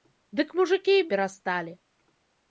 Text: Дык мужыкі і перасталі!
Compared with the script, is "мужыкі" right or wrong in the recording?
right